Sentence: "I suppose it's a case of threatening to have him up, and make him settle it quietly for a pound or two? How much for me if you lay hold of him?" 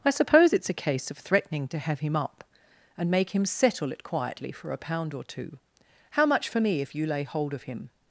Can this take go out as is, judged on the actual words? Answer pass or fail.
pass